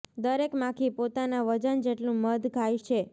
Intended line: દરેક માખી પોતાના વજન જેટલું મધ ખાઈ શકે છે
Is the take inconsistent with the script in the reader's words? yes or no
yes